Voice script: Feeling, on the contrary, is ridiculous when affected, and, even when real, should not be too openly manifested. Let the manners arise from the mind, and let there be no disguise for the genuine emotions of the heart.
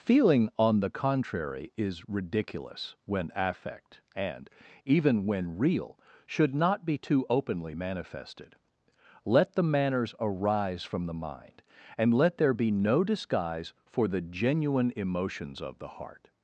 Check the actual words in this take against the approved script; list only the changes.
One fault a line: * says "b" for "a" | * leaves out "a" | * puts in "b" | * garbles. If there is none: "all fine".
* says "affect" for "affected"